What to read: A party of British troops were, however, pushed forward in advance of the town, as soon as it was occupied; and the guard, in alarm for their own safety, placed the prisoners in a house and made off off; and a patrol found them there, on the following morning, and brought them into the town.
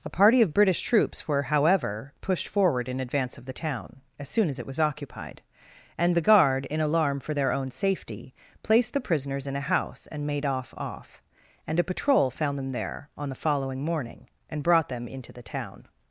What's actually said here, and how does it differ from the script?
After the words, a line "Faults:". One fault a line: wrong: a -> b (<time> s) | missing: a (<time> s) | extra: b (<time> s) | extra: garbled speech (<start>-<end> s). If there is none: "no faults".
A party of British troops were, however, pushed forward in advance of the town, as soon as it was occupied; and the guard, in alarm for their own safety, placed the prisoners in a house and made off off; and a patrol found them there, on the following morning, and brought them into the town.
Faults:
no faults